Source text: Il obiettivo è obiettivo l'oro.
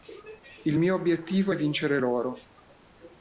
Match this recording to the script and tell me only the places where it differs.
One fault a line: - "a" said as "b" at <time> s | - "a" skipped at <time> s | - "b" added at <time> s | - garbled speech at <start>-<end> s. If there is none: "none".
- "mio" added at 0.8 s
- "obiettivo" said as "vincere" at 1.6 s